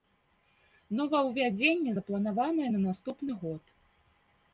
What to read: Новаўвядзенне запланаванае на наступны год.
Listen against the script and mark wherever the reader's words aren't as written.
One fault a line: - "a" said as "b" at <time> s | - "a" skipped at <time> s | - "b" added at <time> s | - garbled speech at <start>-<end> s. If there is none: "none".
none